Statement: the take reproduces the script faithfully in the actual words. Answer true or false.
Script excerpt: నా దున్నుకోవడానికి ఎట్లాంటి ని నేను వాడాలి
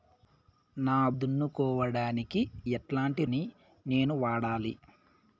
true